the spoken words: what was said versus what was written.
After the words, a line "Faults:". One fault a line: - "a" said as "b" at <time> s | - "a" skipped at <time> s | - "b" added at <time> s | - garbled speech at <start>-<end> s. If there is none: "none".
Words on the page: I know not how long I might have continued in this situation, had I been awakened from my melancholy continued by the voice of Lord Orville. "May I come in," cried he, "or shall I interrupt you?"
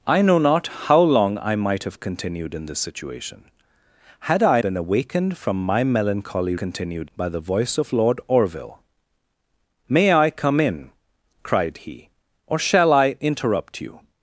I know not how long I might have continued in this situation, had I been awakened from my melancholy continued by the voice of Lord Orville. "May I come in," cried he, "or shall I interrupt you?"
Faults:
none